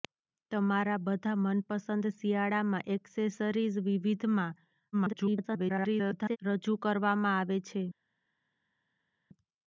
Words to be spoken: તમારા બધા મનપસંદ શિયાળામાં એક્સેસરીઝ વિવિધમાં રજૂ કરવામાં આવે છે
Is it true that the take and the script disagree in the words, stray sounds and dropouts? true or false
true